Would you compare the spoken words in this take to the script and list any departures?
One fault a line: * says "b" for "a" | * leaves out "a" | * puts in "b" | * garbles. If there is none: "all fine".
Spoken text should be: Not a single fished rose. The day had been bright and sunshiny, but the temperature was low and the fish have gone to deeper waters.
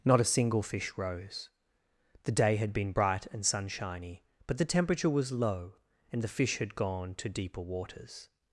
* says "fish" for "fished"
* says "had" for "have"